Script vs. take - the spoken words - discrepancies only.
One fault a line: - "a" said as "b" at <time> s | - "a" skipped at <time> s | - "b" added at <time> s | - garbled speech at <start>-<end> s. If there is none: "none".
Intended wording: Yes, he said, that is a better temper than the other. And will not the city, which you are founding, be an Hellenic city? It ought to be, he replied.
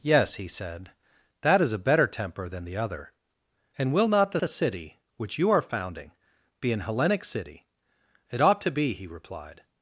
- "the" added at 4.4 s